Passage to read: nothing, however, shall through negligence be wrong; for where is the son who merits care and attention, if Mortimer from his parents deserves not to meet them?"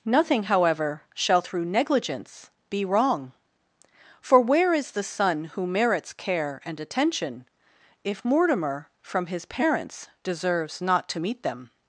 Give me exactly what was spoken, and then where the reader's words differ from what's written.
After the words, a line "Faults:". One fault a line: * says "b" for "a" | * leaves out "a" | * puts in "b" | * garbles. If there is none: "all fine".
nothing, however, shall through negligence be wrong; for where is the son who merits care and attention, if Mortimer from his parents deserves not to meet them?"
Faults:
all fine